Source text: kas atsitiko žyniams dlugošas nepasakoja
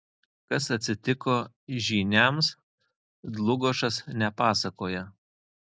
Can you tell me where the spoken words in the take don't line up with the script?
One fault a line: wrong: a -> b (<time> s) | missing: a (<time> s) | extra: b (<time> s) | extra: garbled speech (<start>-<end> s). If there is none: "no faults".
no faults